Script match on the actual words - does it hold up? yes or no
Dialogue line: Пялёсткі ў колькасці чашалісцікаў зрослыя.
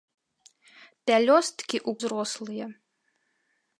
no